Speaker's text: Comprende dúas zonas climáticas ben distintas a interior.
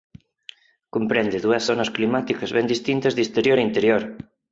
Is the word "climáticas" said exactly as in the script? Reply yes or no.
yes